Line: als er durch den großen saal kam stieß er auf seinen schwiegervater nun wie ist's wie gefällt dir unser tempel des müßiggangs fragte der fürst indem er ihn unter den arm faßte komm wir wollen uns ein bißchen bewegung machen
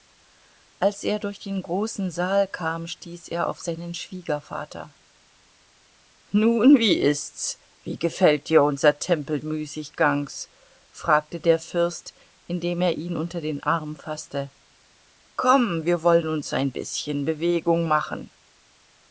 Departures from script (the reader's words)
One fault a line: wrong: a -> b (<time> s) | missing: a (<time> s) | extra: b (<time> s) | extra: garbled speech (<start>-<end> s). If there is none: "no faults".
missing: des (9.4 s)